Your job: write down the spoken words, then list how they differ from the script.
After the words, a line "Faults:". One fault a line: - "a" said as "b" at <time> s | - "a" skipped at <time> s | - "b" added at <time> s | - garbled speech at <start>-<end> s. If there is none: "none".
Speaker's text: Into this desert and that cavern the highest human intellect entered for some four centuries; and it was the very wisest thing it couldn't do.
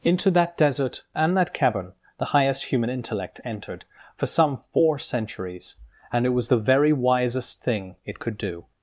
Into that desert and that cavern the highest human intellect entered for some four centuries; and it was the very wisest thing it could do.
Faults:
- "this" said as "that" at 0.3 s
- "couldn't" said as "could" at 8.2 s